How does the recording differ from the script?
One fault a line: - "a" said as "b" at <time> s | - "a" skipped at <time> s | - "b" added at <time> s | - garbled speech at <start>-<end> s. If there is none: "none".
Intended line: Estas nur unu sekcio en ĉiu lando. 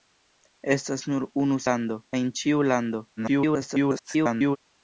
- "sekcio" said as "lando" at 1.7 s
- garbled speech at 3.2-4.6 s